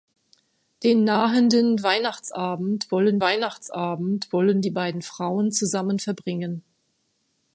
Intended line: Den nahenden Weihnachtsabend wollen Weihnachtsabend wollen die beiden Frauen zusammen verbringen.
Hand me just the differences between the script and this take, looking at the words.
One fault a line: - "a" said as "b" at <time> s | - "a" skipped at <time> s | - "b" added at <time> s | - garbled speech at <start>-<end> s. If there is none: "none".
none